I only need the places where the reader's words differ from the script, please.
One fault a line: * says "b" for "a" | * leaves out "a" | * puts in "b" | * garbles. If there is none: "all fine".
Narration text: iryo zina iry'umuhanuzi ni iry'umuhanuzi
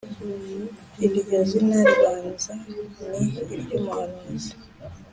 * says "ribanza" for "iry'umuhanuzi"